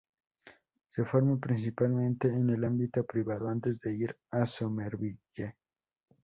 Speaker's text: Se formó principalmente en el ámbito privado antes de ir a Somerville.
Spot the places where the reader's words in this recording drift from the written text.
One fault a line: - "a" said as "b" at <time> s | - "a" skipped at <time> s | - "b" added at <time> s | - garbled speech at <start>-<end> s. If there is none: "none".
none